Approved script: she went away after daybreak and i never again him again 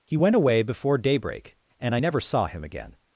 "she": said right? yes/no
no